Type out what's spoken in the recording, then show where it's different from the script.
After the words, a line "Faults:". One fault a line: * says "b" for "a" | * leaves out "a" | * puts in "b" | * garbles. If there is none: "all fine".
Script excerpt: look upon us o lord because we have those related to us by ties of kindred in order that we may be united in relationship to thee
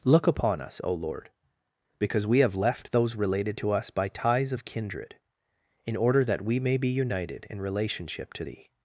look upon us o lord because we have left those related to us by ties of kindred in order that we may be united in relationship to thee
Faults:
* puts in "left"